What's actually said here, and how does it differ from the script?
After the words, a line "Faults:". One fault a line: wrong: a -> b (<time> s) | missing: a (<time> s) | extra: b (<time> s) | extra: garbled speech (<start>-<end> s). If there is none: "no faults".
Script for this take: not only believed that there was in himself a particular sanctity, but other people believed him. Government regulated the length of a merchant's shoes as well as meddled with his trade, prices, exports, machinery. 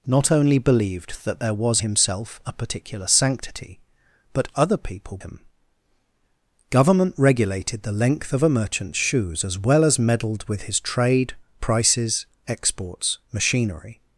not only believed that there was himself a particular sanctity, but other people him. Government regulated the length of a merchant's shoes as well as meddled with his trade, prices, exports, machinery.
Faults:
missing: in (1.8 s)
missing: believed (5.2 s)